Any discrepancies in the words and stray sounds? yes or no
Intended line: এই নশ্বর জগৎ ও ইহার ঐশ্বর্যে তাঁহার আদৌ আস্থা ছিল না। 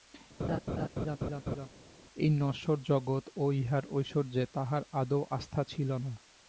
yes